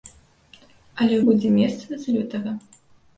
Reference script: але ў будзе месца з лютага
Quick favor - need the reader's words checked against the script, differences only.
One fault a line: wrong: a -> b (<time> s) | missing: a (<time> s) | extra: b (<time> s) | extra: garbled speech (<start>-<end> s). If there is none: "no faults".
no faults